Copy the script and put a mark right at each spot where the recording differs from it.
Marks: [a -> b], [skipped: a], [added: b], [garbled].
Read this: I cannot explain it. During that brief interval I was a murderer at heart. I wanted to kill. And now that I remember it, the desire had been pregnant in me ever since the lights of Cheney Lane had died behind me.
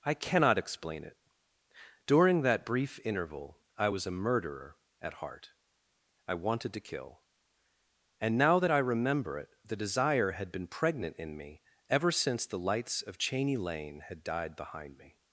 I cannot explain it. During that brief interval I was a murderer at heart. I wanted to kill. And now that I remember it, the desire had been pregnant in me ever since the lights of Cheney Lane had died behind me.